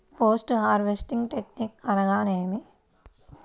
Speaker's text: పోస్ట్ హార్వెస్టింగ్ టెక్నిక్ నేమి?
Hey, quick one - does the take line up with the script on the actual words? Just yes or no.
no